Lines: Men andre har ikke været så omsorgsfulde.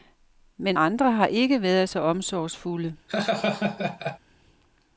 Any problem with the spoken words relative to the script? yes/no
no